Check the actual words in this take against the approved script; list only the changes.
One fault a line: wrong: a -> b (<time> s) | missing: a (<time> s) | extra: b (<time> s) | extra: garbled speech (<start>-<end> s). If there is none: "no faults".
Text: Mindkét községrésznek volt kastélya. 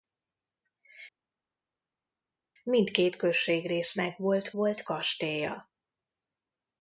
extra: volt (4.5 s)